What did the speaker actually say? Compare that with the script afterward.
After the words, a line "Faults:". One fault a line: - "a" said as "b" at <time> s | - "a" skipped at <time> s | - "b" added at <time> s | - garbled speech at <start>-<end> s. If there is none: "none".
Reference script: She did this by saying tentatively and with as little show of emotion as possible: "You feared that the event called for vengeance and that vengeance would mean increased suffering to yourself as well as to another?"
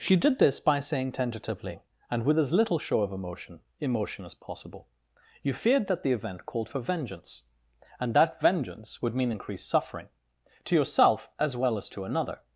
She did this by saying tentatively and with as little show of emotion emotion as possible: "You feared that the event called for vengeance and that vengeance would mean increased suffering to yourself as well as to another?"
Faults:
- "emotion" added at 3.8 s